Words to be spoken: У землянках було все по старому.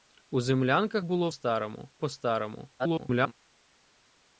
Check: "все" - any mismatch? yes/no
yes